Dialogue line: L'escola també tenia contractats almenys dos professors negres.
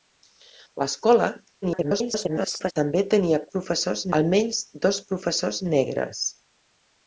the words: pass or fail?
fail